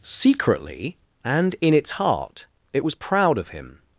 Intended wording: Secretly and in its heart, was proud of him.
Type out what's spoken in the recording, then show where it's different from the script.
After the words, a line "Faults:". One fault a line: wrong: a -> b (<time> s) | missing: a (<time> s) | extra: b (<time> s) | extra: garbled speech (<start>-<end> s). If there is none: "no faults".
Secretly and in its heart, it was proud of him.
Faults:
extra: it (2.7 s)